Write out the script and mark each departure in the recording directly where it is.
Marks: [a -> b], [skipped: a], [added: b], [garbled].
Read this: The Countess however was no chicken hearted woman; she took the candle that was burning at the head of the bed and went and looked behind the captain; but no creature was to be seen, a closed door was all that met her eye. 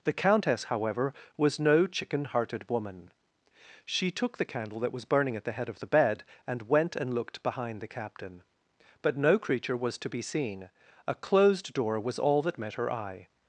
The Countess however was no chicken hearted woman; she took the candle that was burning at the head of the bed and went and looked behind the captain; but no creature was to be seen, a closed door was all that met her eye.